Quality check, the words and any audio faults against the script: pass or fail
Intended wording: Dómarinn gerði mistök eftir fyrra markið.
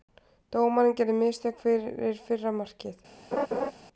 fail